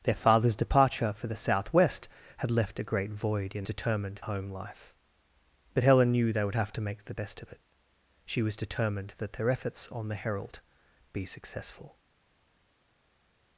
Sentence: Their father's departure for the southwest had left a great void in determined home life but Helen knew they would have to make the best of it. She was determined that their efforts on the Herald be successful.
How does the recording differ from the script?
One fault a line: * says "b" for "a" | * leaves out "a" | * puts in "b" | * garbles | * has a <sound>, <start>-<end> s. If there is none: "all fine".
all fine